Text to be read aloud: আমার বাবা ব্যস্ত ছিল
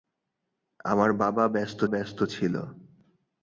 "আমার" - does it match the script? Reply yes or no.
yes